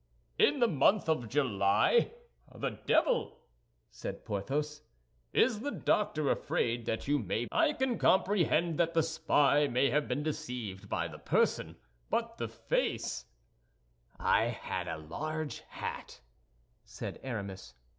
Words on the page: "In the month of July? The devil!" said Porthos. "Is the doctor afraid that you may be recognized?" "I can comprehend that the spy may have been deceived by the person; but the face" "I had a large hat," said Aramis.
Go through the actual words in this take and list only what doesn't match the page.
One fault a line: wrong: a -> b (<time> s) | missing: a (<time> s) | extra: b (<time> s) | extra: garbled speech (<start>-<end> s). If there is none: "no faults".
missing: be recognized (7.4 s)